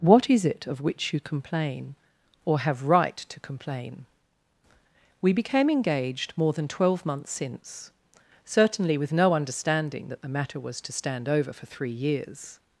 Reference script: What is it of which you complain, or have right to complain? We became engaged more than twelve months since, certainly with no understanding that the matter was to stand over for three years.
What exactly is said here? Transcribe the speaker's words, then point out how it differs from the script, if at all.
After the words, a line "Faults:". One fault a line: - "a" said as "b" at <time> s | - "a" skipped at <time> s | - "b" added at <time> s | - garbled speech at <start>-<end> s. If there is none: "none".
What is it of which you complain, or have right to complain? We became engaged more than twelve months since, certainly with no understanding that the matter was to stand over for three years.
Faults:
none